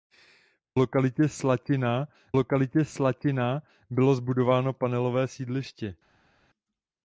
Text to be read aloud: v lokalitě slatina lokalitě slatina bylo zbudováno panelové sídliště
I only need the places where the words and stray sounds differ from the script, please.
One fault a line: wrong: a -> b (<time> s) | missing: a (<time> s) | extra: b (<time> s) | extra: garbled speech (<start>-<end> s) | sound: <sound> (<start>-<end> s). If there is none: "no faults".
no faults